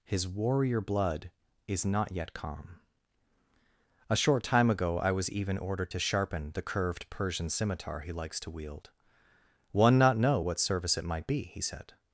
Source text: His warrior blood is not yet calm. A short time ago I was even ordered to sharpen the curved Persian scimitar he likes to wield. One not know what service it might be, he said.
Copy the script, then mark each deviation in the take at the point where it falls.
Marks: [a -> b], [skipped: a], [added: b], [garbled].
His warrior blood is not yet calm. A short time ago I was even ordered to sharpen the curved Persian scimitar he likes to wield. One not know what service it might be, he said.